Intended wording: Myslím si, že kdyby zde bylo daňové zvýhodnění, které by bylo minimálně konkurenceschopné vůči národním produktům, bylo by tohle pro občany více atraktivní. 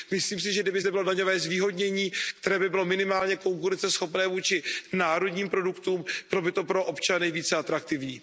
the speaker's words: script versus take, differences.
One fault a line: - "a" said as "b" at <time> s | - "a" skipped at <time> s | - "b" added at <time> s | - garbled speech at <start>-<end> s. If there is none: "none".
- "tohle" said as "to" at 6.5 s